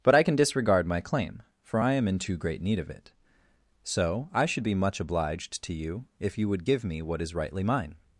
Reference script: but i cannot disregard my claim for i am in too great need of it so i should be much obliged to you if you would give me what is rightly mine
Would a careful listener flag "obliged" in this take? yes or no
no